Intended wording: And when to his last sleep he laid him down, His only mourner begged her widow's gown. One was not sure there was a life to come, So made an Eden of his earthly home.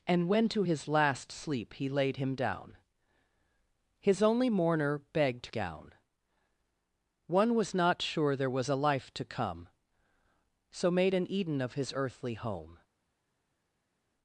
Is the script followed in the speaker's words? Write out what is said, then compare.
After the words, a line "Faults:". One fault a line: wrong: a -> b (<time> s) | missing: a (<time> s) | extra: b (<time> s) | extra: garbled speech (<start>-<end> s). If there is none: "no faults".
And when to his last sleep he laid him down, His only mourner begged gown. One was not sure there was a life to come, So made an Eden of his earthly home.
Faults:
missing: her widow's (5.5 s)